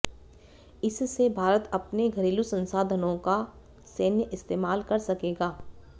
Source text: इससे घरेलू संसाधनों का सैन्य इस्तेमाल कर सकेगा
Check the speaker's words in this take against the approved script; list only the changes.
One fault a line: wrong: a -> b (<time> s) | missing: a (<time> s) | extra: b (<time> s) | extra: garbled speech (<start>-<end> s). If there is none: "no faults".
extra: भारत अपने (1.4 s)